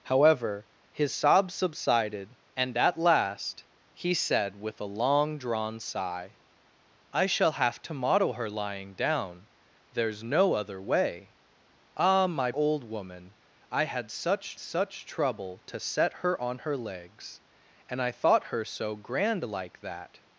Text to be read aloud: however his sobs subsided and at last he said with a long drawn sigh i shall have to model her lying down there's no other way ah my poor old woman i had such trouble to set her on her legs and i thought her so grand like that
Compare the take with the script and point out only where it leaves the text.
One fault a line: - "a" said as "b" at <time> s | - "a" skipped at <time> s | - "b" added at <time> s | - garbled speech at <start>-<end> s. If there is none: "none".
- "poor" skipped at 12.5 s
- "such" added at 14.6 s